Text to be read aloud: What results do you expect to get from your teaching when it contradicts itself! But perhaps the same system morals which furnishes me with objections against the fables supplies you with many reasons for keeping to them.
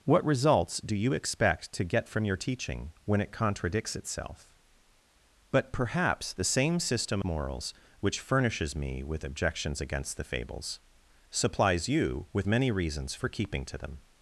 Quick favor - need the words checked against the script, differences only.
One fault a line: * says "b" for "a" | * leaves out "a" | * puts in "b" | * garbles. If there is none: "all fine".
all fine